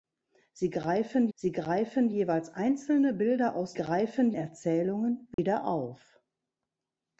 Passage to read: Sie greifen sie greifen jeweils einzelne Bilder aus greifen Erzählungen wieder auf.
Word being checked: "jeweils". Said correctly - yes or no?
yes